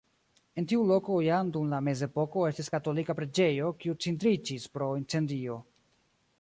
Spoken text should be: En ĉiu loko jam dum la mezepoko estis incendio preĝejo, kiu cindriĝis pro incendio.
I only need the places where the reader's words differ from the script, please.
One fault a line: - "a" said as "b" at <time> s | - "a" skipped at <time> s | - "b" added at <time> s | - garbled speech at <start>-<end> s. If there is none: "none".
- "ĉiu" said as "tiu" at 0.7 s
- "incendio" said as "katolika" at 2.8 s